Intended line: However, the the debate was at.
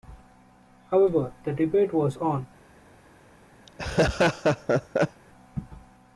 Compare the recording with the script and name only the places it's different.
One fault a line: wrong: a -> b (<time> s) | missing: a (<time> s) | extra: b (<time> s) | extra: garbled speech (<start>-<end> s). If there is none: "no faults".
missing: the (1.5 s)
wrong: at -> on (2.2 s)